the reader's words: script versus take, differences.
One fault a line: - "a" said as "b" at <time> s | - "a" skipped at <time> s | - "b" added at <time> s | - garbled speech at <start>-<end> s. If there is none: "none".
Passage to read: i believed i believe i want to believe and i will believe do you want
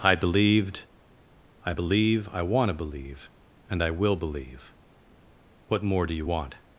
- "what more" added at 5.7 s